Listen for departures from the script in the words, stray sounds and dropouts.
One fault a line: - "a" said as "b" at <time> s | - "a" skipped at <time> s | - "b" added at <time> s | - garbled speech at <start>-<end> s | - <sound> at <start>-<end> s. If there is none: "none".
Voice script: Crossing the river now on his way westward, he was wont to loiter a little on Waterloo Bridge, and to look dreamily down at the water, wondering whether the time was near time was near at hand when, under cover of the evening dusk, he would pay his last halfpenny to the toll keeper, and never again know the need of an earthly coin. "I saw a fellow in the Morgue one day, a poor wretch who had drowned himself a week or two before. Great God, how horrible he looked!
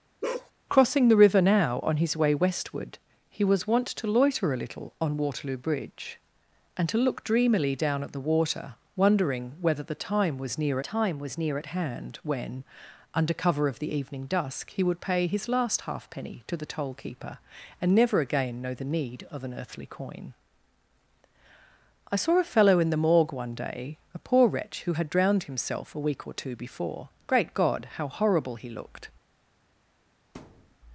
- bark at 0.2-0.5 s
- thud at 30.3-30.8 s